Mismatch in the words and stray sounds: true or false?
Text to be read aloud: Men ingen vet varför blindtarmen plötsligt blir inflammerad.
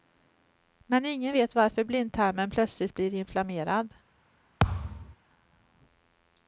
true